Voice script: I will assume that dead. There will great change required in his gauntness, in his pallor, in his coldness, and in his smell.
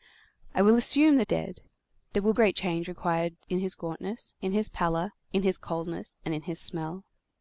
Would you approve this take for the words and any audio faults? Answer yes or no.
yes